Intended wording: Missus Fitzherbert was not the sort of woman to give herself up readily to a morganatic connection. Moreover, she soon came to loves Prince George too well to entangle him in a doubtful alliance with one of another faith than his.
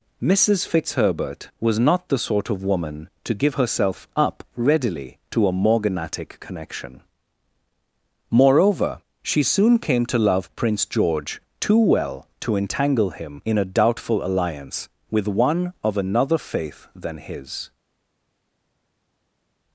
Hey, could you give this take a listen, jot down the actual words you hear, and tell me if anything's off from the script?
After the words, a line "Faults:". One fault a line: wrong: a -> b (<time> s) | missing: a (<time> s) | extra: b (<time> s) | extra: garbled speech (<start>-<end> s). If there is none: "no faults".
Missus Fitzherbert was not the sort of woman to give herself up readily to a morganatic connection. Moreover, she soon came to love Prince George too well to entangle him in a doubtful alliance with one of another faith than his.
Faults:
wrong: loves -> love (10.2 s)